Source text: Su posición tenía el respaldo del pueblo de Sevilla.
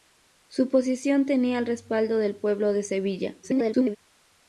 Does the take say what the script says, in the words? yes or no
no